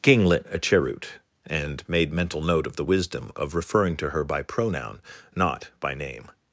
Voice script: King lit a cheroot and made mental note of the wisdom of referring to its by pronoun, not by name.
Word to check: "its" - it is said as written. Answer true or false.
false